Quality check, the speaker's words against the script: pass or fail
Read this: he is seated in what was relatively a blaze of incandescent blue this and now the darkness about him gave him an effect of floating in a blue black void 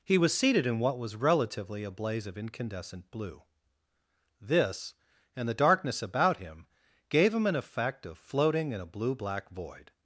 fail